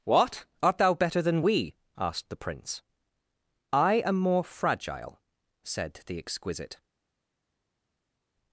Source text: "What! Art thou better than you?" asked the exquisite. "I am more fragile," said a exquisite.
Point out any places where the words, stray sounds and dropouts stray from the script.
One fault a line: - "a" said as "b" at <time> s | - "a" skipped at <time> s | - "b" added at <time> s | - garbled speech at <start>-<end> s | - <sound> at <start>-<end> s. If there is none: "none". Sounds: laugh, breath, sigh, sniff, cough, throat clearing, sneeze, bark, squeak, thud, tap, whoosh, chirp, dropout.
- "you" said as "we" at 1.4 s
- "exquisite" said as "prince" at 2.4 s
- "a" said as "the" at 6.1 s